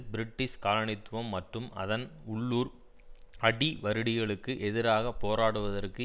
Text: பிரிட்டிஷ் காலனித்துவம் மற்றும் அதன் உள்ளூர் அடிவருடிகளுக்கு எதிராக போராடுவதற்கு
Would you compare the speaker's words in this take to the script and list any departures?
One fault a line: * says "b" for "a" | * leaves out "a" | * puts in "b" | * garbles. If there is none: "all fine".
all fine